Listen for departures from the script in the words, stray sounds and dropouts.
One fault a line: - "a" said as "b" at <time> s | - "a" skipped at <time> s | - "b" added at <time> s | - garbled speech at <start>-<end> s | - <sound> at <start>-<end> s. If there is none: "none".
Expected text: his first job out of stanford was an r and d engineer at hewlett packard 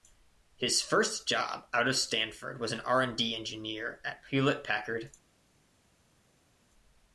none